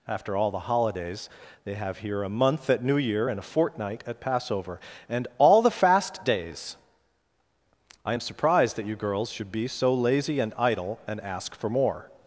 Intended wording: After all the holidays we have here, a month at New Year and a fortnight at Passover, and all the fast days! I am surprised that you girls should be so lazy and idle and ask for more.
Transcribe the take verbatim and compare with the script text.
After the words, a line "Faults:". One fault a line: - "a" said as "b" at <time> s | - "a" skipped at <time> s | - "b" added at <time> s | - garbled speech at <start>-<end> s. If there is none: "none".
After all the holidays they have here, a month at New Year and a fortnight at Passover, and all the fast days! I am surprised that you girls should be so lazy and idle and ask for more.
Faults:
- "we" said as "they" at 1.6 s